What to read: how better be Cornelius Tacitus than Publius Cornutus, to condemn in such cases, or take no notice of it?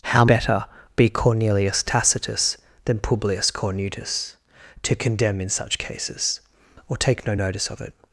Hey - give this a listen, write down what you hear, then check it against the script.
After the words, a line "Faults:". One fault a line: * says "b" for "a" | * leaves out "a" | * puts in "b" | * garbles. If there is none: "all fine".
how better be Cornelius Tacitus than Publius Cornutus, to condemn in such cases, or take no notice of it?
Faults:
all fine